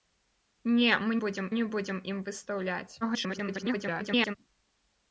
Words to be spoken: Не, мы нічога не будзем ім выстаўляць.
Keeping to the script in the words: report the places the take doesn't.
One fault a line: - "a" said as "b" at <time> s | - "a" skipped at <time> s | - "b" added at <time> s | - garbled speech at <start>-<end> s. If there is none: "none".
- "нічога" said as "будзем" at 1.2 s
- garbled speech at 3.0-4.4 s